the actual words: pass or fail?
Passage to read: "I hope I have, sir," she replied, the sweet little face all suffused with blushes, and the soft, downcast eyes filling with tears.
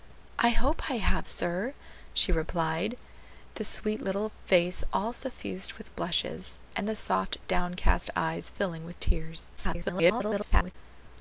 fail